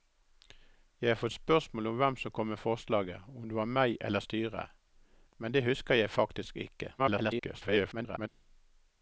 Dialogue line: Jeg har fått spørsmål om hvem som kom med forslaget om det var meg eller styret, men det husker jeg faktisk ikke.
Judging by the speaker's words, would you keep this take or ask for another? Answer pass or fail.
fail